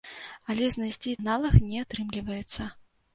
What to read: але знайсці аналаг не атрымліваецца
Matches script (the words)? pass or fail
pass